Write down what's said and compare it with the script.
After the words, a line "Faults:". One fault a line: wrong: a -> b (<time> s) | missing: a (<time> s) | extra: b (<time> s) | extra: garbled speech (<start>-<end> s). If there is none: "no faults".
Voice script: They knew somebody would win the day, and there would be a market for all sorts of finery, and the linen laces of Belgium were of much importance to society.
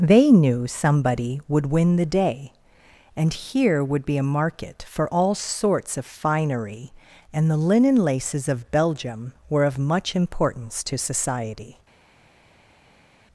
They knew somebody would win the day, and here would be a market for all sorts of finery, and the linen laces of Belgium were of much importance to society.
Faults:
wrong: there -> here (3.3 s)